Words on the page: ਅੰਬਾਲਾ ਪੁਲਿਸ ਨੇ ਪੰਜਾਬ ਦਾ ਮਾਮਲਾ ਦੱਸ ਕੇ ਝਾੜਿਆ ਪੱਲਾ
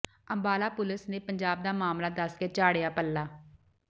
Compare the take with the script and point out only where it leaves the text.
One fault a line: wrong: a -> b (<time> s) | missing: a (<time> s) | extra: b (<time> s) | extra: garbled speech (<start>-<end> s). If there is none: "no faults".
no faults